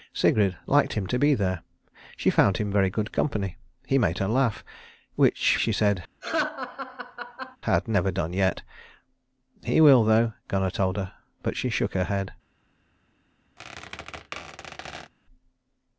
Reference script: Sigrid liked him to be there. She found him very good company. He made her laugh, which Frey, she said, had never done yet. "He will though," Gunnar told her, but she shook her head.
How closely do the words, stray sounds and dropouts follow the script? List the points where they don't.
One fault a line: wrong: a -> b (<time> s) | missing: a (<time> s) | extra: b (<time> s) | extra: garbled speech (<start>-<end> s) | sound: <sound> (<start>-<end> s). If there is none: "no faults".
missing: Frey (5.6 s)
sound: laugh (6.2-7.6 s)
sound: squeak (13.6-15.1 s)